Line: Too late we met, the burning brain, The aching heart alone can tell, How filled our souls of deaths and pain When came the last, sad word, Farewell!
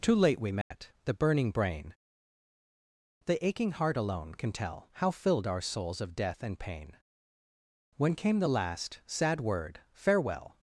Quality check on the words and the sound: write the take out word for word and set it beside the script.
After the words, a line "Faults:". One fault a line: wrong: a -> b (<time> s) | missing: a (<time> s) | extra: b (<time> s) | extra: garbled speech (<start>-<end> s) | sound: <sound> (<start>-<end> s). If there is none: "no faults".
Too late we met, the burning brain, The aching heart alone can tell, How filled our souls of death and pain When came the last, sad word, Farewell!
Faults:
sound: dropout (0.6-0.7 s)
wrong: deaths -> death (6.2 s)